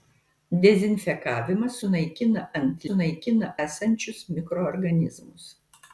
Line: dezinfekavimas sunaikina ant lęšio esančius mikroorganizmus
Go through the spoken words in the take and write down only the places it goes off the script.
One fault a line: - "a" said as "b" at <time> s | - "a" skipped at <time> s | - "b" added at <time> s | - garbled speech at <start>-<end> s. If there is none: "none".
- "lęšio" said as "sunaikina" at 2.9 s